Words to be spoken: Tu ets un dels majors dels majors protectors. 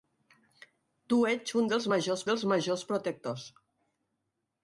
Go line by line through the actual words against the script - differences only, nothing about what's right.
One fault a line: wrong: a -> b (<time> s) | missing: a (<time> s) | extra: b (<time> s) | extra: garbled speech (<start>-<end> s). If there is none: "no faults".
no faults